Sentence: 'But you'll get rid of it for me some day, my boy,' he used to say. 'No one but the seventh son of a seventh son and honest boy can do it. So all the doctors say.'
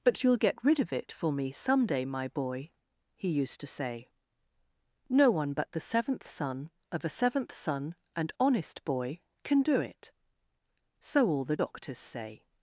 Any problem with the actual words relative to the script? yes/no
no